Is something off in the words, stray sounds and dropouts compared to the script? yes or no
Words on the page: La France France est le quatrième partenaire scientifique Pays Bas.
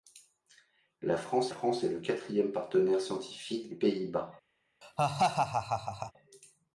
yes